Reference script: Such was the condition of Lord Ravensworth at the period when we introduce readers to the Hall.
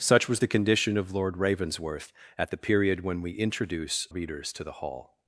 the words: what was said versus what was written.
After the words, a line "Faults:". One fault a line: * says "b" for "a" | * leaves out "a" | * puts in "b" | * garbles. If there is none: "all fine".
Such was the condition of Lord Ravensworth at the period when we introduce readers to the Hall.
Faults:
all fine